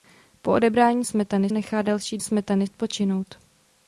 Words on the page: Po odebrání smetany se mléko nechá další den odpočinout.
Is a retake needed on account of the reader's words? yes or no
yes